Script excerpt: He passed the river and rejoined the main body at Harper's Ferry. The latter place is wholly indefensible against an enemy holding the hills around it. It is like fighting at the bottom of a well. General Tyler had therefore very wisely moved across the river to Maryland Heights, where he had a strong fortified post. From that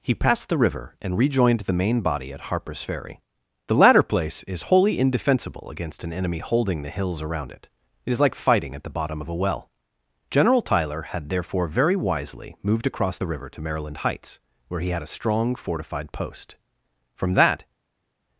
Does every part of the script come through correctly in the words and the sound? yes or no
yes